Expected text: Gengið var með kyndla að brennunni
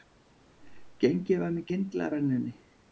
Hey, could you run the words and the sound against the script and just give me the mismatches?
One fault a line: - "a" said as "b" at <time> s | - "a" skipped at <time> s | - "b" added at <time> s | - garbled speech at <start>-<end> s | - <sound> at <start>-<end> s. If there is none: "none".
none